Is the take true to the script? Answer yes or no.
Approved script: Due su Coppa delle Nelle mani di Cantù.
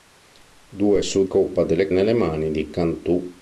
yes